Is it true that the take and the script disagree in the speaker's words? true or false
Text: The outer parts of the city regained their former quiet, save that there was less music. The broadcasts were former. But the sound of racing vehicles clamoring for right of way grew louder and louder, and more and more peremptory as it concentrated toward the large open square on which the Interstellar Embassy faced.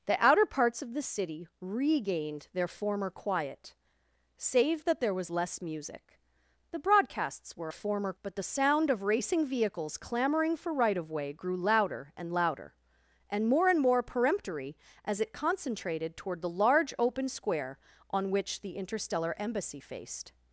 false